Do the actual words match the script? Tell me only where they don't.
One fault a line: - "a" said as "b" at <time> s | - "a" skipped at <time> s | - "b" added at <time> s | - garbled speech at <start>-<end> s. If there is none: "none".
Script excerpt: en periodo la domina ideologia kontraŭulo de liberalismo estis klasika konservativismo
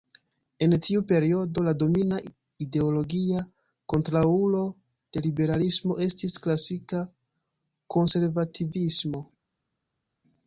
- "tiu" added at 0.8 s